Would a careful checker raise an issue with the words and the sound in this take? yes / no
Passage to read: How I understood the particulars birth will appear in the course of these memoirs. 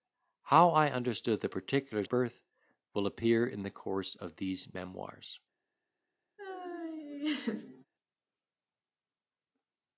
yes